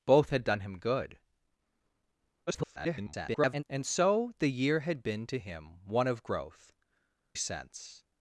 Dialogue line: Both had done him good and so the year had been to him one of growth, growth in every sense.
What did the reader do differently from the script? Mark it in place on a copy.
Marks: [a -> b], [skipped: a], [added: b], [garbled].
Both had done him good [garbled] and so the year had been to him one of growth, [skipped: growth in every] sense.